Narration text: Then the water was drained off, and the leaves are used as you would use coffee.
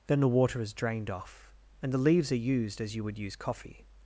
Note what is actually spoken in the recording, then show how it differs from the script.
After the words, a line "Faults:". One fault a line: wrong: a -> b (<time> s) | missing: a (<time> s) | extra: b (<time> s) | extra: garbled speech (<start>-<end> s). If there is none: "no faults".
Then the water is drained off, and the leaves are used as you would use coffee.
Faults:
wrong: was -> is (0.6 s)